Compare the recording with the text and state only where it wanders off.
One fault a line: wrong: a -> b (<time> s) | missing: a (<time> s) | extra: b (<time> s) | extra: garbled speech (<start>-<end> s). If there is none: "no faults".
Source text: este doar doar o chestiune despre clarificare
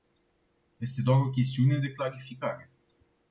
missing: doar (1.2 s)
wrong: despre -> de (1.8 s)